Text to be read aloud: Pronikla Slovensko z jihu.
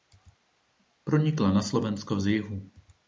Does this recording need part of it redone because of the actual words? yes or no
yes